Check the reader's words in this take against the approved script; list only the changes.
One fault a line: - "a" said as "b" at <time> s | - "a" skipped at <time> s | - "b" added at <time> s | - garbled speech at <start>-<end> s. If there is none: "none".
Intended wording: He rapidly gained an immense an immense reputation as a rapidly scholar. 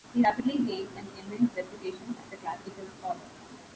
- "an immense" skipped at 1.5 s
- "rapidly" said as "classical" at 2.4 s